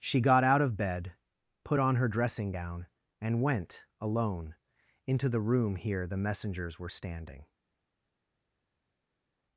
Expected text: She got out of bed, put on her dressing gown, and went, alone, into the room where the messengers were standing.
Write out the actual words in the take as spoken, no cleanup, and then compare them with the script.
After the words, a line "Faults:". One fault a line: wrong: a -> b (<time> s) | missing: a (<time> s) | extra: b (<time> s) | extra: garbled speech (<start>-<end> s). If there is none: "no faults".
She got out of bed, put on her dressing gown, and went, alone, into the room here the messengers were standing.
Faults:
wrong: where -> here (5.7 s)